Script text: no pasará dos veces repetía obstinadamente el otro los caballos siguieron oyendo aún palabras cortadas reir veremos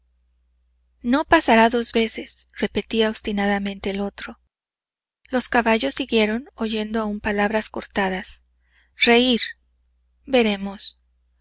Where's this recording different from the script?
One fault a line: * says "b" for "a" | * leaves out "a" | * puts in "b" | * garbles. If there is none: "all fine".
all fine